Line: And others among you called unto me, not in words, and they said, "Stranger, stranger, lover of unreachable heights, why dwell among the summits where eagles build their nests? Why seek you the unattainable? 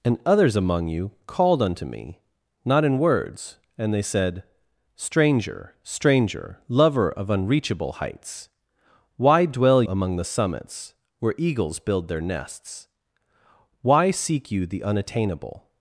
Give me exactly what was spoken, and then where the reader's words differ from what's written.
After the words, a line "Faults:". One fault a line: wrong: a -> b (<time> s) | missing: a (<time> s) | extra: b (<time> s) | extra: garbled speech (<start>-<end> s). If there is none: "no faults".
And others among you called unto me, not in words, and they said, "Stranger, stranger, lover of unreachable heights, why dwell among the summits where eagles build their nests? Why seek you the unattainable?
Faults:
no faults